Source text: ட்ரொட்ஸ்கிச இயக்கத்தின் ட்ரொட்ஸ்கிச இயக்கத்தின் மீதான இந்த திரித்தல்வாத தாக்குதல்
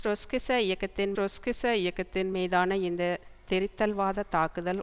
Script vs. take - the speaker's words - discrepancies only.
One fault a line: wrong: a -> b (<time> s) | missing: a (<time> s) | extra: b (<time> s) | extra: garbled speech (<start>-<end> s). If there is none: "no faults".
no faults